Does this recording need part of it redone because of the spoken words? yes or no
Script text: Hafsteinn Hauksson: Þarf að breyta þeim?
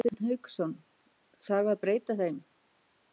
no